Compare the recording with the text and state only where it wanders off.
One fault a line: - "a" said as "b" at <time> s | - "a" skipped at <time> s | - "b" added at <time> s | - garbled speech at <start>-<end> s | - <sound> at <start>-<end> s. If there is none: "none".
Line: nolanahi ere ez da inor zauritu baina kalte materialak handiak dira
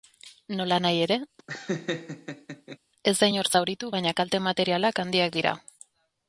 - laugh at 1.4-2.8 s